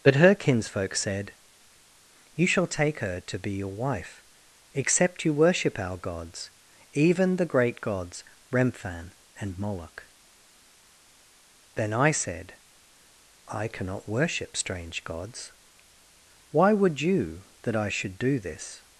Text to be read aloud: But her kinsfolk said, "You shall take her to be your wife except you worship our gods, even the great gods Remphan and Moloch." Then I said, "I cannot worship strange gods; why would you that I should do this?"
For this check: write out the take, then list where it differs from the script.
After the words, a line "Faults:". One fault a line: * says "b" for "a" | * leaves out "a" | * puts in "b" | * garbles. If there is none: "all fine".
But her kinsfolk said, "You shall take her to be your wife except you worship our gods, even the great gods Remphan and Moloch." Then I said, "I cannot worship strange gods; why would you that I should do this?"
Faults:
all fine